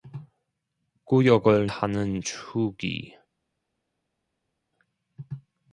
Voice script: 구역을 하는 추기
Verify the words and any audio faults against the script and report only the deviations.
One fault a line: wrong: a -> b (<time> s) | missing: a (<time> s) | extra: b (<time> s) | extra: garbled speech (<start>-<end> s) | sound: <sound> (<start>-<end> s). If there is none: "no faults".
no faults